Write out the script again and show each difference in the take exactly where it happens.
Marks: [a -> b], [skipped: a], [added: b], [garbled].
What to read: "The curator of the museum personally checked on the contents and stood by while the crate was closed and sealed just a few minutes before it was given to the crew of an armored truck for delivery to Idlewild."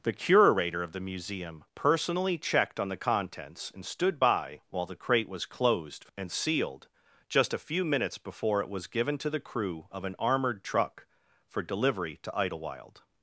"The curator of the museum personally checked on the contents and stood by while the crate was closed and sealed just a few minutes before it was given to the crew of an armored truck for delivery to Idlewild."